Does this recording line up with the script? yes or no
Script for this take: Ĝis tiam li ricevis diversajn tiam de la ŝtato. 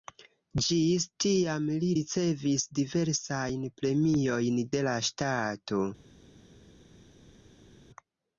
no